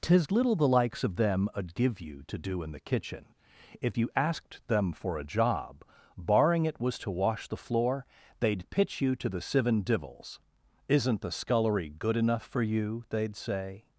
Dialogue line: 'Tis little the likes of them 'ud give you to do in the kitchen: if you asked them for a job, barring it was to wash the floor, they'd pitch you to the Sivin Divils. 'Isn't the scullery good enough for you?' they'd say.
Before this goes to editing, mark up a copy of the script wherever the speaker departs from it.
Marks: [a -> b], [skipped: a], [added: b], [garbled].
'Tis little the likes of them 'ud give you to do in the kitchen: if you asked them for a job, barring it was to wash the floor, they'd pitch you to the Sivin Divils. 'Isn't the scullery good enough for you?' they'd say.